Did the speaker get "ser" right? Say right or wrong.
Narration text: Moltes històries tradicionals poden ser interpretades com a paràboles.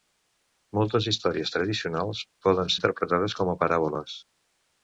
wrong